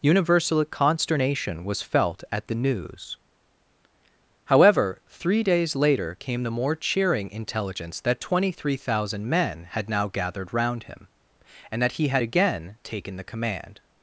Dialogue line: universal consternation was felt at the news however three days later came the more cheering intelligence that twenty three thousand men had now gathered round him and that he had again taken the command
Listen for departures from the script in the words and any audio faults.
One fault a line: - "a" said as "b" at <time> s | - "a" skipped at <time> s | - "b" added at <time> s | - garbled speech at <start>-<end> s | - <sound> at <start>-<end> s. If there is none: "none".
none